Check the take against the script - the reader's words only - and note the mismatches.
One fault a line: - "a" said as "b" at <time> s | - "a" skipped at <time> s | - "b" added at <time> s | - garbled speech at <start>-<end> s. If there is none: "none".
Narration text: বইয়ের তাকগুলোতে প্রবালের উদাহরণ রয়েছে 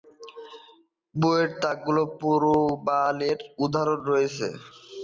none